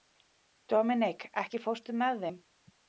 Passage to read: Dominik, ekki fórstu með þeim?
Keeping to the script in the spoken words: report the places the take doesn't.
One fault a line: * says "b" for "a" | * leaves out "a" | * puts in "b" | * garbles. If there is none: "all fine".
all fine